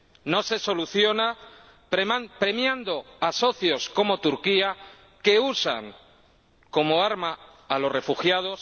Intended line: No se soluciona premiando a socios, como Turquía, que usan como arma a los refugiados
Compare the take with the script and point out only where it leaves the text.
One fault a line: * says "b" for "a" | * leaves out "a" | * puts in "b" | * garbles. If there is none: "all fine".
all fine